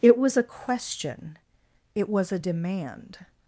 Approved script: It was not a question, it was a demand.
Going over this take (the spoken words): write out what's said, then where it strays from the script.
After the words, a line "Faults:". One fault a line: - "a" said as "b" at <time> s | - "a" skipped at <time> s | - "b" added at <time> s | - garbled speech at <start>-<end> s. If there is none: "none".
It was a question, it was a demand.
Faults:
- "not" skipped at 0.3 s